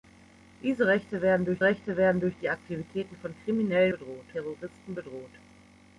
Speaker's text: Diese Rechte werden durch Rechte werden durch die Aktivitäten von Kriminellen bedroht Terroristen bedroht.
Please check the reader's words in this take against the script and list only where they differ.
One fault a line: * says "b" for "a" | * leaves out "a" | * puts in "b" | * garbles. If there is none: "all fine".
all fine